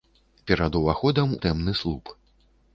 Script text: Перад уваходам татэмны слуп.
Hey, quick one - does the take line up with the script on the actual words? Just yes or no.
yes